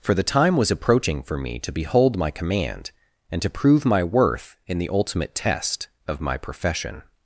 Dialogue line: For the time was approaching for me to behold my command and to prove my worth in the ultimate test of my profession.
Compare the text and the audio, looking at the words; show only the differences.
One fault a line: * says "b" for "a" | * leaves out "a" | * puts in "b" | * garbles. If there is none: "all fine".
all fine